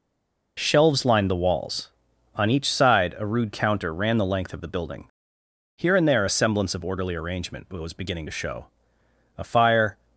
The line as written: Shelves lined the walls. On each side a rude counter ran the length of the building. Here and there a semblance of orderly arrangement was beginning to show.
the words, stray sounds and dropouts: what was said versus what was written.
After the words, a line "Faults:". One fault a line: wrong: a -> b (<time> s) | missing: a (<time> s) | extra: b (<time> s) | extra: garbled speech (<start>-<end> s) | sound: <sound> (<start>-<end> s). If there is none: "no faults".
Shelves lined the walls. On each side a rude counter ran the length of the building. Here and there a semblance of orderly arrangement was beginning to show. A fire
Faults:
extra: A fire (9.4 s)